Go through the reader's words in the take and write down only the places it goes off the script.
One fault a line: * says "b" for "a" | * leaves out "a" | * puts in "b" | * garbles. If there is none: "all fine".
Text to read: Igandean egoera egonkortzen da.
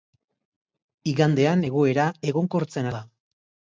all fine